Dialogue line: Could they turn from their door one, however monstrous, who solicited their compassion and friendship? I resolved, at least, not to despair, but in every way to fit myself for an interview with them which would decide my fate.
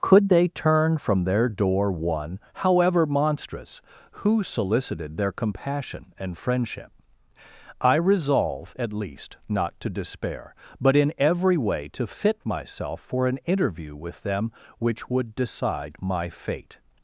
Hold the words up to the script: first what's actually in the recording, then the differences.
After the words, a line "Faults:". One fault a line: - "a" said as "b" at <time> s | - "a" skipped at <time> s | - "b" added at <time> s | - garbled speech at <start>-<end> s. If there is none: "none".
Could they turn from their door one, however monstrous, who solicited their compassion and friendship? I resolve, at least, not to despair, but in every way to fit myself for an interview with them which would decide my fate.
Faults:
- "resolved" said as "resolve" at 8.0 s